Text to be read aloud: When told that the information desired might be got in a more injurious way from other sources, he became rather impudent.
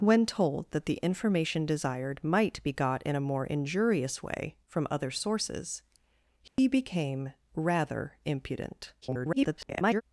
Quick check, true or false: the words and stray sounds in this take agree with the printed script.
false